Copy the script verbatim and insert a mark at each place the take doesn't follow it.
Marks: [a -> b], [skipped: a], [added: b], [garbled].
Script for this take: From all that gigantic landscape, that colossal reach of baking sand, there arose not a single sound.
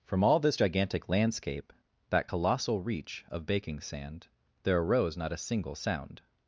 From all [that -> this] gigantic landscape, that colossal reach of baking sand, there arose not a single sound.